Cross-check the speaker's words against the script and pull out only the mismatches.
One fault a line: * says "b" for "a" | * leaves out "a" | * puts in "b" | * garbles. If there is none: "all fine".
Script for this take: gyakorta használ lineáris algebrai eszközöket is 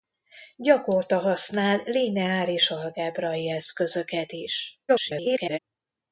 * garbles